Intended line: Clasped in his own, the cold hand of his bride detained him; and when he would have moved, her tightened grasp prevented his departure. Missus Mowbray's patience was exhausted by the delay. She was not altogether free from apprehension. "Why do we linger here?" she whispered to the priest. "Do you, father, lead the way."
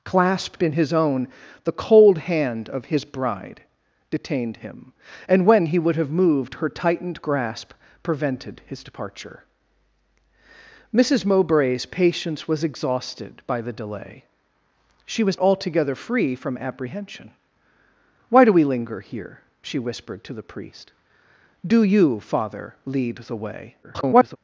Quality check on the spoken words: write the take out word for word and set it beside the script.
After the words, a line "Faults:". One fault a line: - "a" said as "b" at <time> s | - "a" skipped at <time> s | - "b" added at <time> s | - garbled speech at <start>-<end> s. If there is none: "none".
Clasped in his own, the cold hand of his bride detained him; and when he would have moved, her tightened grasp prevented his departure. Missus Mowbray's patience was exhausted by the delay. She was altogether free from apprehension. "Why do we linger here?" she whispered to the priest. "Do you, father, lead the way." [garbled]
Faults:
- "not" skipped at 15.4 s
- garbled speech at 23.8-24.4 s